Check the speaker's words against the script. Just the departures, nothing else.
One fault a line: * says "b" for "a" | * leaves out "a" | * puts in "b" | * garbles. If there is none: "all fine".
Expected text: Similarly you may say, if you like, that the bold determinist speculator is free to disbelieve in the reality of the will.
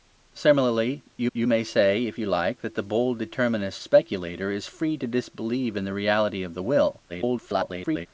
* puts in "you"
* garbles